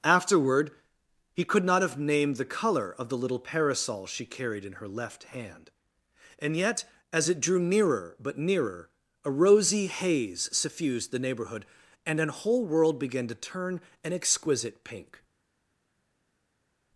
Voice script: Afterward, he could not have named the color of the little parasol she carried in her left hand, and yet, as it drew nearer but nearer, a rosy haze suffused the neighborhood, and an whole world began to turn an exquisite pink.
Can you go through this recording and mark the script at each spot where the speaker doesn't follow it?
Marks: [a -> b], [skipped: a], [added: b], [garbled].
Afterward, he could not have named the color of the little parasol she carried in her left hand, and yet, as it drew nearer but nearer, a rosy haze suffused the neighborhood, and an whole world began to turn an exquisite pink.